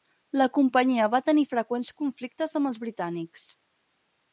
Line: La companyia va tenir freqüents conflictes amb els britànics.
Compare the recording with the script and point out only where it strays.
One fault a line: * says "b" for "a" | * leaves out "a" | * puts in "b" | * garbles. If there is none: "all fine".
all fine